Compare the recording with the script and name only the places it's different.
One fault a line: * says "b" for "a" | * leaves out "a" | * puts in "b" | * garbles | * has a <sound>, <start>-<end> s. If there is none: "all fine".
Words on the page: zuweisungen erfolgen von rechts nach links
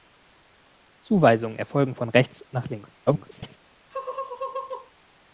* garbles
* has a laugh, 3.9-4.9 s